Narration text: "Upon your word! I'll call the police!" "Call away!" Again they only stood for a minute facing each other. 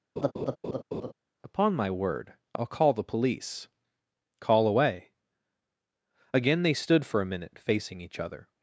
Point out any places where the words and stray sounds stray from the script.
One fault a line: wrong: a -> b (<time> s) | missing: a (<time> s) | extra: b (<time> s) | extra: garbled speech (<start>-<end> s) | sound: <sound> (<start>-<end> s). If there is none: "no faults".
sound: laugh (0.2-1.1 s)
wrong: your -> my (1.7 s)
missing: only (6.7 s)